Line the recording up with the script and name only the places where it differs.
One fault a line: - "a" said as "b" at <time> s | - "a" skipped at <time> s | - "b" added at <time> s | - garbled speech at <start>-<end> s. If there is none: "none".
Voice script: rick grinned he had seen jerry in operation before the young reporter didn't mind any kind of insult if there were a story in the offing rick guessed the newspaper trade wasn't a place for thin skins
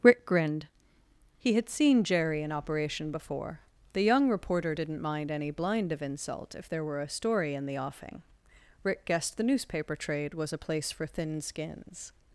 - "kind" said as "blind" at 5.5 s
- "wasn't" said as "was" at 10.3 s